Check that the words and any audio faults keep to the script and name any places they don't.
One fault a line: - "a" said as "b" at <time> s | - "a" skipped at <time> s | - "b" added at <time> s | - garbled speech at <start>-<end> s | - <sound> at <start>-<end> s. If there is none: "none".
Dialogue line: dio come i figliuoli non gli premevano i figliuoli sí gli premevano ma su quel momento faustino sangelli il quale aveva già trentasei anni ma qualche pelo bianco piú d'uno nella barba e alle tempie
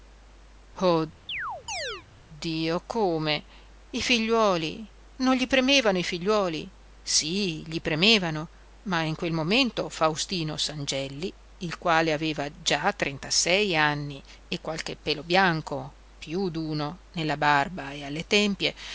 - chirp at 1.3-2.0 s
- "su" said as "in" at 9.0 s
- "ma" said as "e" at 14.5 s